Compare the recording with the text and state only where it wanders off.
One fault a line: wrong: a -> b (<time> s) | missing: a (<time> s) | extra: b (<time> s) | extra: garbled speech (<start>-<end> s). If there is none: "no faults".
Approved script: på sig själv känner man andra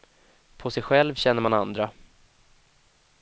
no faults